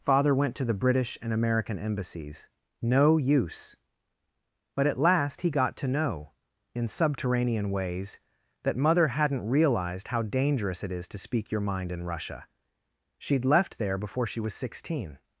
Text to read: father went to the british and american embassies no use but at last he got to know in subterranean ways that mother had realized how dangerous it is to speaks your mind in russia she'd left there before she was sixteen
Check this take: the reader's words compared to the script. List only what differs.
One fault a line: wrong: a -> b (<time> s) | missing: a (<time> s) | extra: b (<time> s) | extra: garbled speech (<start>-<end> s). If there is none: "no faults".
wrong: had -> hadn't (9.1 s)
wrong: speaks -> speak (11.2 s)